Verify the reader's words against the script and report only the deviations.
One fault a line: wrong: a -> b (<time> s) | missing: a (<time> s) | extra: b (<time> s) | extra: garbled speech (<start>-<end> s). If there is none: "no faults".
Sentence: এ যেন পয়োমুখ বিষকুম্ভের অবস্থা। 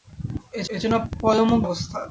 extra: এ (0.7 s)
missing: বিষকুম্ভের (1.6 s)